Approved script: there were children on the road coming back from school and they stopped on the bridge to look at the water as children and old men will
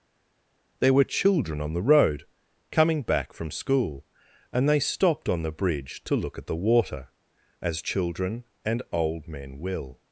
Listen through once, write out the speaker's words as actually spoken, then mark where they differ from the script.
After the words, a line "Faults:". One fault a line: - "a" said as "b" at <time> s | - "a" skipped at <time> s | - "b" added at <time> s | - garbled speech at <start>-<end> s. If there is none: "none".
there were children on the road coming back from school and they stopped on the bridge to look at the water as children and old men will
Faults:
none